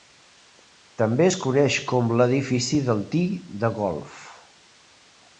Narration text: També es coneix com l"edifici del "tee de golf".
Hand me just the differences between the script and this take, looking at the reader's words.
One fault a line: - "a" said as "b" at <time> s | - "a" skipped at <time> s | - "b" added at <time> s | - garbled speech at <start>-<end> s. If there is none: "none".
none